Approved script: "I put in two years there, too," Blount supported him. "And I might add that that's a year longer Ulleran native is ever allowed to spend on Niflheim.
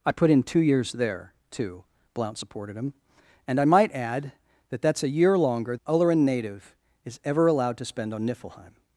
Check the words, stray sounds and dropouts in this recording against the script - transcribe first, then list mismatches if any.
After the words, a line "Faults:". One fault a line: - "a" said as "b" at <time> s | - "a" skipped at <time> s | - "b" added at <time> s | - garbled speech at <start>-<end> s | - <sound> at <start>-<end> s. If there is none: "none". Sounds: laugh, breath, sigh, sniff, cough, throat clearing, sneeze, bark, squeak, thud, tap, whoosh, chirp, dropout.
"I put in two years there, too," Blount supported him. "And I might add that that's a year longer Ulleran native is ever allowed to spend on Niflheim.
Faults:
none